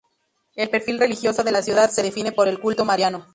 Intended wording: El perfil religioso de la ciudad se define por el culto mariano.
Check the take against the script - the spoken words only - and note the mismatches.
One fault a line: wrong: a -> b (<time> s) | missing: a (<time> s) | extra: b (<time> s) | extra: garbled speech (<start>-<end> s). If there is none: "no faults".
no faults